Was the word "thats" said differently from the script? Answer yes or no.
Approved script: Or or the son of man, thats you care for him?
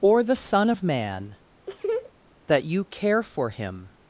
yes